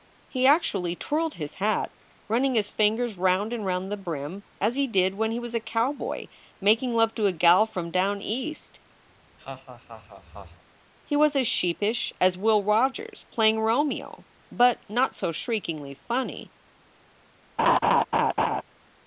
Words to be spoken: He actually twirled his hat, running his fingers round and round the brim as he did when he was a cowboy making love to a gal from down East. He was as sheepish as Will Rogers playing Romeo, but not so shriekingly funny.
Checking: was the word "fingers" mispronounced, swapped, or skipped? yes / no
no